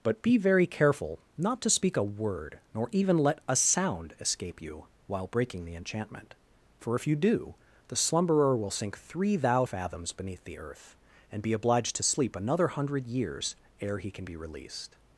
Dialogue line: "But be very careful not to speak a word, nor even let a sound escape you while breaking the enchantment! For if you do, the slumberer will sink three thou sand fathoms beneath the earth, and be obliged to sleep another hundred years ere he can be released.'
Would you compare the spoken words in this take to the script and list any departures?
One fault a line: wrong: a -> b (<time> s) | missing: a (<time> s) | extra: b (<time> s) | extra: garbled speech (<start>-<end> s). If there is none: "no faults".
missing: sand (9.7 s)